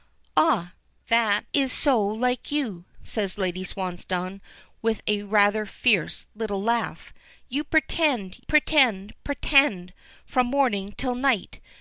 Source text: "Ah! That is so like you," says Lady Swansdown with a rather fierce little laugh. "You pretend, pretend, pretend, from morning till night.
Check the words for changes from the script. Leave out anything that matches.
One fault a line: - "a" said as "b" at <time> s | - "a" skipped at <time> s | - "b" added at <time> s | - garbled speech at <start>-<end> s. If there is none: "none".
none